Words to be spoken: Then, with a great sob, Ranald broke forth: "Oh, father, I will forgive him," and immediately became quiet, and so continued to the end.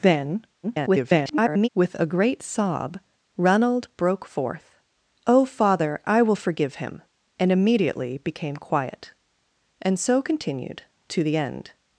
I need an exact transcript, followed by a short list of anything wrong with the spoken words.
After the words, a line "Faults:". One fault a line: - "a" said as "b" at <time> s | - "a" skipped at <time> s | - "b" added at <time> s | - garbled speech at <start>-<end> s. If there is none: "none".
Then, [garbled] with a great sob, Ranald broke forth: "Oh, father, I will forgive him," and immediately became quiet, and so continued to the end.
Faults:
- garbled speech at 0.6-1.7 s